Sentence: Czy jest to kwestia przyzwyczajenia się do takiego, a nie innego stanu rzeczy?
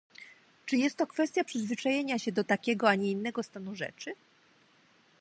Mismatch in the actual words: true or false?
false